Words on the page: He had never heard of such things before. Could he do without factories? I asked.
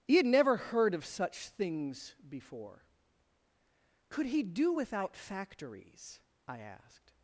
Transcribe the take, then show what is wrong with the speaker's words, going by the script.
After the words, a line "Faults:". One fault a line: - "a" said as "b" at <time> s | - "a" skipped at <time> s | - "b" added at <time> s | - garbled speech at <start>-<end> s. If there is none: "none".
He had never heard of such things before. Could he do without factories? I asked.
Faults:
none